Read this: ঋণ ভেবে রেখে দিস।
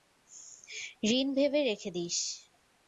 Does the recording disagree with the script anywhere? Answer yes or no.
no